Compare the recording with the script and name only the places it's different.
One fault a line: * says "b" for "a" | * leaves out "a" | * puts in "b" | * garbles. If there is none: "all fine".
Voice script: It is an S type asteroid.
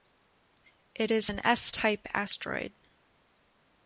all fine